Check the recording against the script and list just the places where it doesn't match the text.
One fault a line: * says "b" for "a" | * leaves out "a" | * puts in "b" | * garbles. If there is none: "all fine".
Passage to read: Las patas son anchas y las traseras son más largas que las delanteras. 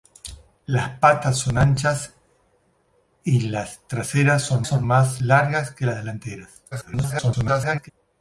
* puts in "son"
* garbles